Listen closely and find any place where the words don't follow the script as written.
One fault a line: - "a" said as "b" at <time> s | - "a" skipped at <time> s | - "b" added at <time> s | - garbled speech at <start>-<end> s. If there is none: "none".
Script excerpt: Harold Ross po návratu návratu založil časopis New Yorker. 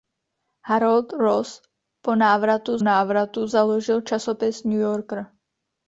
none